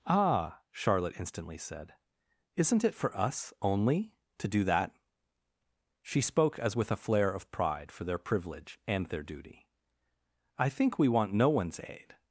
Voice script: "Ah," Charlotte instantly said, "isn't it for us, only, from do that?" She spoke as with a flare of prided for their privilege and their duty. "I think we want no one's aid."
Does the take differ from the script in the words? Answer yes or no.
yes